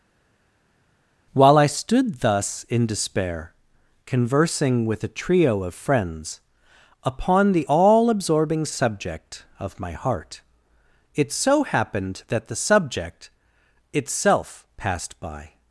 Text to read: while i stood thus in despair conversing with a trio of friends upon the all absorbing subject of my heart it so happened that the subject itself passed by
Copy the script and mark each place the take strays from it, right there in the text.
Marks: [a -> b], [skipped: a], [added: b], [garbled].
while i stood thus in despair conversing with a trio of friends upon the all absorbing subject of my heart it so happened that the subject itself passed by